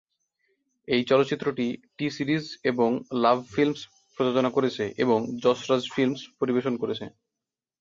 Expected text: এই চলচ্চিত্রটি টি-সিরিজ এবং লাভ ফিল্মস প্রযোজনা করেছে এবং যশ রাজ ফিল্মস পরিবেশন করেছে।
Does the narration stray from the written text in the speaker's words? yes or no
no